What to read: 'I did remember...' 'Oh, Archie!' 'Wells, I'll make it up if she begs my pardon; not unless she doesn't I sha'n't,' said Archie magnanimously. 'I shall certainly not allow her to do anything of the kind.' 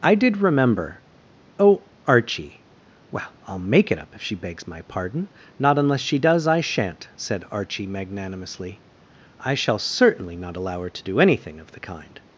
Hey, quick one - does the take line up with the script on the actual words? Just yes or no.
no